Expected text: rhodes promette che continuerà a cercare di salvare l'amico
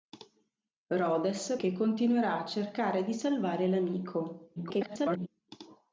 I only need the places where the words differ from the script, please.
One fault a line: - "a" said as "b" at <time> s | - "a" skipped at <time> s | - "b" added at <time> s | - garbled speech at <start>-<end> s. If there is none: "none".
- "promette" skipped at 1.6 s
- garbled speech at 4.6-5.3 s